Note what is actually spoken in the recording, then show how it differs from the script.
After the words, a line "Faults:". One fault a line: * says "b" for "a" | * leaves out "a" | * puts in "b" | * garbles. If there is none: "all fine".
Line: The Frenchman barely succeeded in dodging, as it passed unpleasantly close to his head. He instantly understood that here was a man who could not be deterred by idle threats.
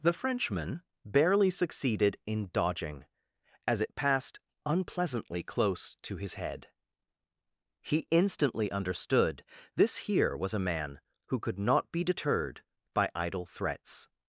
The Frenchman barely succeeded in dodging, as it passed unpleasantly close to his head. He instantly understood this here was a man who could not be deterred by idle threats.
Faults:
* says "this" for "that"